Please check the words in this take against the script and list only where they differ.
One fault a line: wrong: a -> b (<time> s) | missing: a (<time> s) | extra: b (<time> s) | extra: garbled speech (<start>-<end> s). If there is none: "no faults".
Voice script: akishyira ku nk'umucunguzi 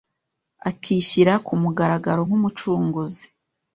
extra: mugaragaro (1.6 s)